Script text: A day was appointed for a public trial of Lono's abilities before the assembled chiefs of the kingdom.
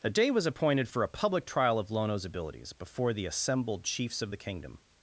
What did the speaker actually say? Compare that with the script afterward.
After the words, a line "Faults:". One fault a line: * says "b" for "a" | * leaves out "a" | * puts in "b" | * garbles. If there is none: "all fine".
A day was appointed for a public trial of Lono's abilities before the assembled chiefs of the kingdom.
Faults:
all fine